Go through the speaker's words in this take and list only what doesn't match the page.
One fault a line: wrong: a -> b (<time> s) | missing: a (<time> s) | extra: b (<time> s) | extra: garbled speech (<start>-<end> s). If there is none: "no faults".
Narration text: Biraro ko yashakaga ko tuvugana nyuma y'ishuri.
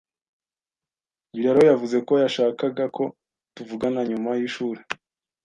extra: yavuze (1.7 s)